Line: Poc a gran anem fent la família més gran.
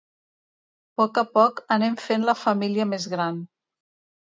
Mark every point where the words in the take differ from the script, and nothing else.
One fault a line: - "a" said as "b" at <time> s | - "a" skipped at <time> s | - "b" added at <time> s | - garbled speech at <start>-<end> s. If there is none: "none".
- "gran" said as "poc" at 1.4 s